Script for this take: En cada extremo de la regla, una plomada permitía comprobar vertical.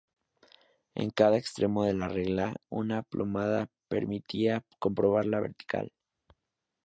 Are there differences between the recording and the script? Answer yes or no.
yes